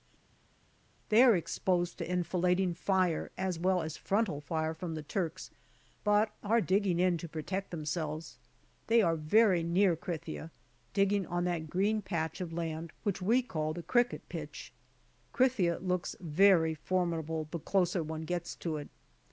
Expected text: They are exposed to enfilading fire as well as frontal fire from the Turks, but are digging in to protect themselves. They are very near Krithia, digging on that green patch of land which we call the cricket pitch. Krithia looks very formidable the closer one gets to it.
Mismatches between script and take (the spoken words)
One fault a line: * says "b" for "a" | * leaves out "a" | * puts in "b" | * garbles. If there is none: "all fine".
all fine